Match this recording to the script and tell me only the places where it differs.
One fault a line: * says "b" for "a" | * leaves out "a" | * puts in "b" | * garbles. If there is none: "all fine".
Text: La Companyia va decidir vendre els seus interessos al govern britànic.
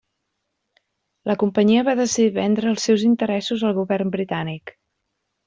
all fine